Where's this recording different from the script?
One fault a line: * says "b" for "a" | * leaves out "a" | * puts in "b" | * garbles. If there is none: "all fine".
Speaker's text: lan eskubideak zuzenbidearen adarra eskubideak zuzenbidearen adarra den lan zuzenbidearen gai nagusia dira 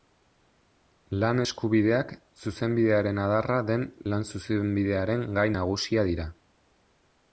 * leaves out "eskubideak zuzenbidearen adarra"